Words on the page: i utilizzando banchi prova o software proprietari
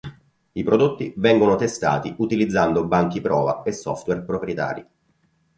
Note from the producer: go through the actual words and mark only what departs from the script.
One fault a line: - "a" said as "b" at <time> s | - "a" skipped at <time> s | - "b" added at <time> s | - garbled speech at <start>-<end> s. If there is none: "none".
- "prodotti vengono testati" added at 0.6 s
- "o" said as "e" at 3.6 s